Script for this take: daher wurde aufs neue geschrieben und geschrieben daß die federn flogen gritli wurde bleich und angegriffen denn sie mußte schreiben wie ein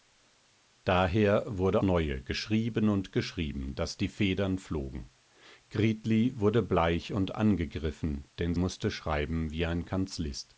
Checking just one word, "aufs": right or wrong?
wrong